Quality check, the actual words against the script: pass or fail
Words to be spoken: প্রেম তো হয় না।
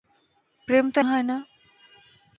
pass